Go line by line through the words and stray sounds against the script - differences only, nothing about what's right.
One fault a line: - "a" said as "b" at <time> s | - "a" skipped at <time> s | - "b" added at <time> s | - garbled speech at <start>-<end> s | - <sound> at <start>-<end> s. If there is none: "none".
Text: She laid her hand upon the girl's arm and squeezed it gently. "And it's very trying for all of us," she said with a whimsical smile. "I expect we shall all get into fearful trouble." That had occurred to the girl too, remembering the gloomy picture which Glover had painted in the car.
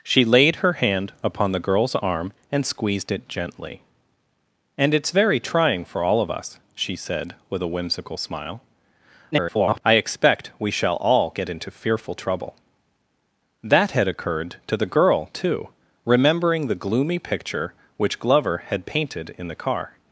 - garbled speech at 9.3-9.8 s